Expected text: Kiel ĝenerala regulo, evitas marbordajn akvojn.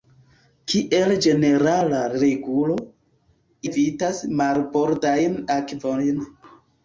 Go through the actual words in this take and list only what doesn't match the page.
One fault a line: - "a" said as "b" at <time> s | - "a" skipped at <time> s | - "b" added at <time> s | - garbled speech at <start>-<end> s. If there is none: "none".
none